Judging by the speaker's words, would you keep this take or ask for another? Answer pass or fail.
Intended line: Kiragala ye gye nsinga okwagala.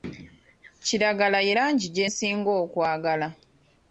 fail